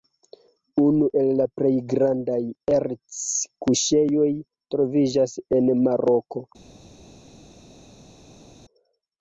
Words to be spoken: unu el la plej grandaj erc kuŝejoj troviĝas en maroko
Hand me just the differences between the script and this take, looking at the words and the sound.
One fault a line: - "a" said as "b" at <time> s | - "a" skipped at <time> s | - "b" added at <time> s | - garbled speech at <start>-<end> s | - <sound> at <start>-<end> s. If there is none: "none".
none